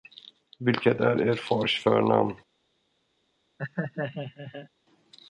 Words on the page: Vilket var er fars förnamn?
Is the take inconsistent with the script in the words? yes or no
yes